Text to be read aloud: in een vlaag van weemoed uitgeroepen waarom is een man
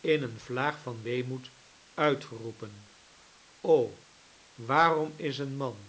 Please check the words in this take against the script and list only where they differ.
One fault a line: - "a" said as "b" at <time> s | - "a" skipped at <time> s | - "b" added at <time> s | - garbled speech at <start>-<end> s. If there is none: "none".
none